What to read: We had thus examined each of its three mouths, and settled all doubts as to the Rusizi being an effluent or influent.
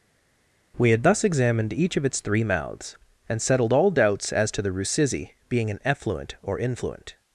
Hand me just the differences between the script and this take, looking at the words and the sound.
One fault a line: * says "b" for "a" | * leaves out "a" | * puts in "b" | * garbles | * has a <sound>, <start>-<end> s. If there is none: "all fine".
all fine